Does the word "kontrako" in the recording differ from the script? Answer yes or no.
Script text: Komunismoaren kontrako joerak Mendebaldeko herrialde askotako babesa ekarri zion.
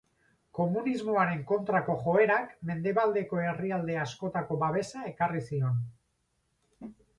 no